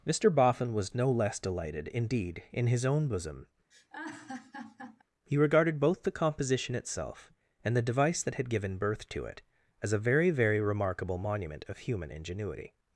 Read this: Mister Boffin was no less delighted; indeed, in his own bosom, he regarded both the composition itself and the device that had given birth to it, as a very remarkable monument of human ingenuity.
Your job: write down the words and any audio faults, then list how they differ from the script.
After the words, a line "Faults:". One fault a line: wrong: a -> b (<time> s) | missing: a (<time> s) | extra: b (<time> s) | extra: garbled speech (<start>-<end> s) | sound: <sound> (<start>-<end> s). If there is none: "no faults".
Mister Boffin was no less delighted; indeed, in his own bosom, he regarded both the composition itself and the device that had given birth to it, as a very very remarkable monument of human ingenuity.
Faults:
sound: laugh (3.7-5.0 s)
extra: very (10.3 s)